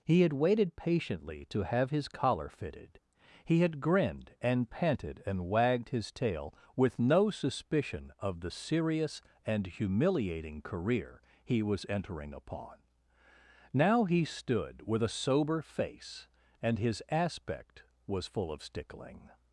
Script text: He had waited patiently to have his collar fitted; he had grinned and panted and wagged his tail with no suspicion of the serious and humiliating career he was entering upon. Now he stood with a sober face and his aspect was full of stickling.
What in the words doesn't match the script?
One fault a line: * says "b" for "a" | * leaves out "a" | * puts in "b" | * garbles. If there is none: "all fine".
all fine